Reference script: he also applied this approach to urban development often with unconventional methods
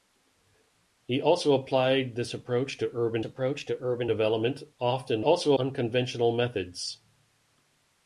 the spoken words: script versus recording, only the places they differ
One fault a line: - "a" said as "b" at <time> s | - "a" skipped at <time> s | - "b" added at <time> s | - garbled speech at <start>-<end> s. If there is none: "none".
- "approach to urban" added at 3.2 s
- "with" said as "also" at 5.2 s